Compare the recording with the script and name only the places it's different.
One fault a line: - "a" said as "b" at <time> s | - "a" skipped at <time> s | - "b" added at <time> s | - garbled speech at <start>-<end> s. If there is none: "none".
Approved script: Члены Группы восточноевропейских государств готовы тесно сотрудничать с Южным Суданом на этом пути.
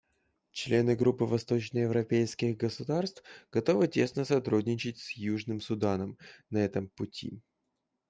none